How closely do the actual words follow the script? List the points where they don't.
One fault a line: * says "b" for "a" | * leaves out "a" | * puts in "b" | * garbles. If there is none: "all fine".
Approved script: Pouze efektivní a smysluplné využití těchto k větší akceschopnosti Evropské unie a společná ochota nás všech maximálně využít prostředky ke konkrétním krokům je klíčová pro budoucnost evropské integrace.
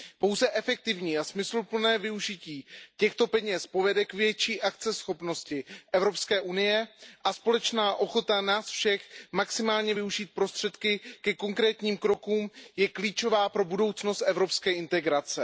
* puts in "peněz povede"